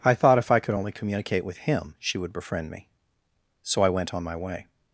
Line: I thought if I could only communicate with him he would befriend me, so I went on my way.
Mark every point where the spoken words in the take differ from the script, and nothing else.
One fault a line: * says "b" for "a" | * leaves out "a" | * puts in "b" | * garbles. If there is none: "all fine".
* says "she" for "he"